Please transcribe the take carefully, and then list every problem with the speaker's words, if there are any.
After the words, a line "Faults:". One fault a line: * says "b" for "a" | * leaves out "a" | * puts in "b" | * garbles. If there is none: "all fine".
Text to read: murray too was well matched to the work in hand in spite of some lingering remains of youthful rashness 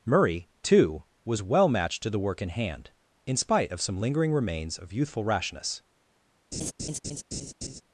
murray too was well matched to the work in hand in spite of some lingering remains of youthful rashness
Faults:
all fine